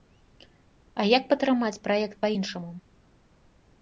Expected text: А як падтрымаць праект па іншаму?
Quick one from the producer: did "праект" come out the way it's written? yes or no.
yes